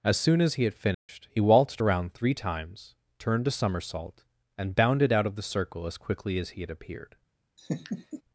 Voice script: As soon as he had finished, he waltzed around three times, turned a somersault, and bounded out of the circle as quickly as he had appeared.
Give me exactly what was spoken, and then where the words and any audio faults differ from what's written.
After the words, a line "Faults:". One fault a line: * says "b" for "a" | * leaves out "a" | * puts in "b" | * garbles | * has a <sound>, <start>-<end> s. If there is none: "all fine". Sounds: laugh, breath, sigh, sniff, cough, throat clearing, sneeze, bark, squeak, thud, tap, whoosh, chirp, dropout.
As soon as he had finished, he waltzed around three times, turned a somersault, and bounded out of the circle as quickly as he had appeared.
Faults:
* has a dropout, 0.9-1.1 s
* has a laugh, 7.6-8.2 s